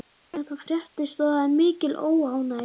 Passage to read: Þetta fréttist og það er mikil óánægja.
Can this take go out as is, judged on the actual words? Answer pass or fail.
pass